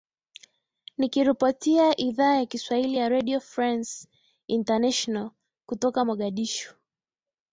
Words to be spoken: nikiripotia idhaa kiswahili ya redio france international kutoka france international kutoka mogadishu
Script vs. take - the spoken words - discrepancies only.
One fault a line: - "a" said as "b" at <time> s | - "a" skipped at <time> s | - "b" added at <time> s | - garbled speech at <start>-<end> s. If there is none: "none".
- "ya" added at 2.4 s
- "france international kutoka" skipped at 6.0 s